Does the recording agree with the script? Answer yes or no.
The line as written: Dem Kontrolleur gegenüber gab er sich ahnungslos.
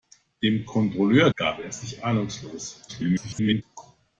no